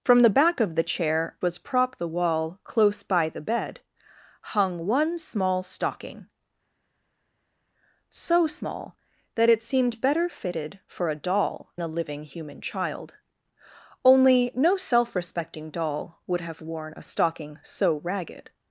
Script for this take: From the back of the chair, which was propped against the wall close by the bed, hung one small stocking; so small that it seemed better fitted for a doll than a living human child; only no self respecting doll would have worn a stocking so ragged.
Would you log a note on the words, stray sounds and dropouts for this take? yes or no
yes